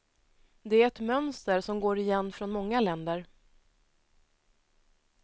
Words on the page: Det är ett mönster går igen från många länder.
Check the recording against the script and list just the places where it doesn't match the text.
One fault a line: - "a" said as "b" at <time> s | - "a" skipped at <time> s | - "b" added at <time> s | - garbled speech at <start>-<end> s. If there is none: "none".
- "som" added at 1.6 s